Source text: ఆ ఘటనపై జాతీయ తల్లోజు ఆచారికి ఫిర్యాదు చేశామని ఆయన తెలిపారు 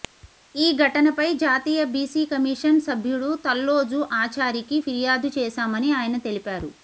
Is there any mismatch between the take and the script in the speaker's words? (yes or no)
yes